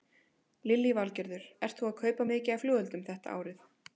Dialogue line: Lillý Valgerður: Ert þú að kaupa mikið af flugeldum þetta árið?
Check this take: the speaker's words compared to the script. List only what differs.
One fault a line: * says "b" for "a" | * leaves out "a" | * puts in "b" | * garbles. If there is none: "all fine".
all fine